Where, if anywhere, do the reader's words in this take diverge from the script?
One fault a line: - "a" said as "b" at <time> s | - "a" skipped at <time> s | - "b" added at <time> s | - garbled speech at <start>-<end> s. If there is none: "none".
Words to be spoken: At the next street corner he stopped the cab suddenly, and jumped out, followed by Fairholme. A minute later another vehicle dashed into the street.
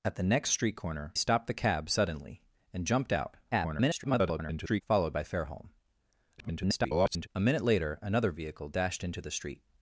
- "he" skipped at 1.1 s
- garbled speech at 3.5-4.8 s
- garbled speech at 6.4-7.3 s